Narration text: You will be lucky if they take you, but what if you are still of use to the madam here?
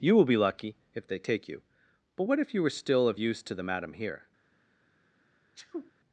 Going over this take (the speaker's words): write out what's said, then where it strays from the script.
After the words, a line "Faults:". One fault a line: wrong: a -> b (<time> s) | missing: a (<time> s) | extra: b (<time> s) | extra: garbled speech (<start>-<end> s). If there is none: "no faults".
You will be lucky if they take you, but what if you were still of use to the madam here?
Faults:
wrong: are -> were (2.6 s)